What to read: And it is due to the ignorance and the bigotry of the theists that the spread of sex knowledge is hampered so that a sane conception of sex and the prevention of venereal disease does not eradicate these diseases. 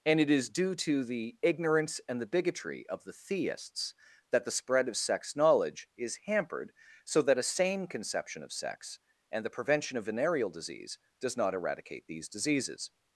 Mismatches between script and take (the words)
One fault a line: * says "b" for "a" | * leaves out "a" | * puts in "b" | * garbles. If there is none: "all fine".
all fine